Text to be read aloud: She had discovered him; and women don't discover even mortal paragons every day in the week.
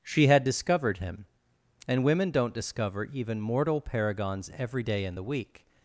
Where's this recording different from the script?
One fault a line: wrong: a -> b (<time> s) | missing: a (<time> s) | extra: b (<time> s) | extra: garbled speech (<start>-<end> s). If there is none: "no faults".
no faults